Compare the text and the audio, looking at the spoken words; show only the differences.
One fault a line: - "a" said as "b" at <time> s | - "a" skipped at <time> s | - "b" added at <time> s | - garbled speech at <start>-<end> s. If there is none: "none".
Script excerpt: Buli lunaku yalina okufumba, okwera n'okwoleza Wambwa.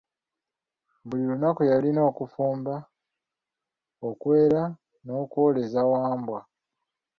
none